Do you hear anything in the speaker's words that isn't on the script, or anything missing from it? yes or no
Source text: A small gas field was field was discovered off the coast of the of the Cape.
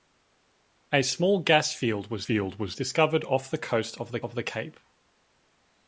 no